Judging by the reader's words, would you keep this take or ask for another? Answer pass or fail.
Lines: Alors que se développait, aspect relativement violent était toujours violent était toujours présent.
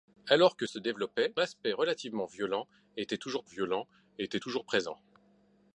pass